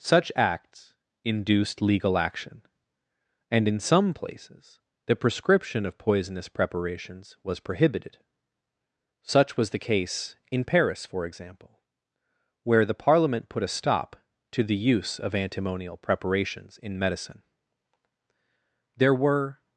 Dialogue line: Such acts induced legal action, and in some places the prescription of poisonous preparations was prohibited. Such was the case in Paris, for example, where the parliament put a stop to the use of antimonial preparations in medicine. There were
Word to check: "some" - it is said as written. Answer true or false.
true